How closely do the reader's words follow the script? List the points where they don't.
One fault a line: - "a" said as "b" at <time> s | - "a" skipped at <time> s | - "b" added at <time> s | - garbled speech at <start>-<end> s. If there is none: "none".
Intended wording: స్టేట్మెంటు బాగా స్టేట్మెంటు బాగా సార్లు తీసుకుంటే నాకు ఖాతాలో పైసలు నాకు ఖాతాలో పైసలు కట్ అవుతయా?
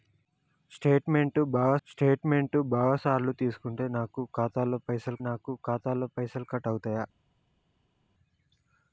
none